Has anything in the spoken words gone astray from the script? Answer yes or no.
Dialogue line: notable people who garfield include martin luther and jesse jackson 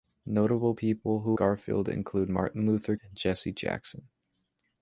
no